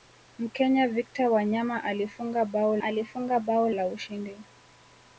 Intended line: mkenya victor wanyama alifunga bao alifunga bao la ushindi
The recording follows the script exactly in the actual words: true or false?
true